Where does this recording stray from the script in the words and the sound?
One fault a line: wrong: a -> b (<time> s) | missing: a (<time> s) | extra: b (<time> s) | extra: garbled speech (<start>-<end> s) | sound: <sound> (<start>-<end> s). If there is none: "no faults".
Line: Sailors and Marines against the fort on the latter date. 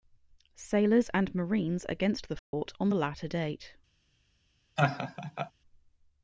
sound: dropout (2.4-2.5 s)
sound: laugh (4.8-5.5 s)